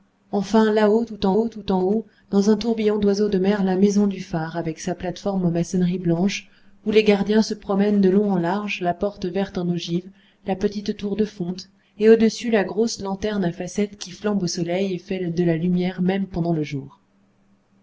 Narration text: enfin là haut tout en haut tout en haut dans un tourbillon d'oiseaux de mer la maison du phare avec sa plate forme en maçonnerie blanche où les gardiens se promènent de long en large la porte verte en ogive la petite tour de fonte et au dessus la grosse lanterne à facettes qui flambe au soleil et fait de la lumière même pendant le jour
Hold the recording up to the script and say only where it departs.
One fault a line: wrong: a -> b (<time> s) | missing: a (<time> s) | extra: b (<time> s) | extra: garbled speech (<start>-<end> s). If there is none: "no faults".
no faults